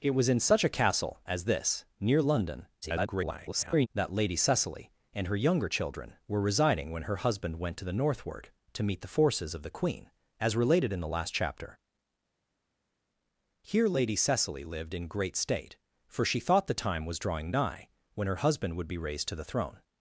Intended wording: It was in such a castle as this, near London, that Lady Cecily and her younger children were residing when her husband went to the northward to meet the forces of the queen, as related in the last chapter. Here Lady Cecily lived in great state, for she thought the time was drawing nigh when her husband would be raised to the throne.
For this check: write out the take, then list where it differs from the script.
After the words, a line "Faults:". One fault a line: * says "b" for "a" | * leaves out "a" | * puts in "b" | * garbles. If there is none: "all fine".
It was in such a castle as this, near London, [garbled] that Lady Cecily and her younger children were residing when her husband went to the northward to meet the forces of the queen, as related in the last chapter. Here Lady Cecily lived in great state, for she thought the time was drawing nigh when her husband would be raised to the throne.
Faults:
* garbles